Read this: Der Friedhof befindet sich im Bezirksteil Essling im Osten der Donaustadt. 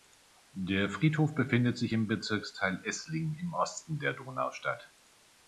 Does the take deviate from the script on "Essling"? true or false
false